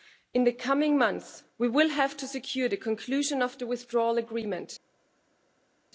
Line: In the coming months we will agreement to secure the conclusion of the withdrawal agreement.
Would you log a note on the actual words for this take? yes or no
yes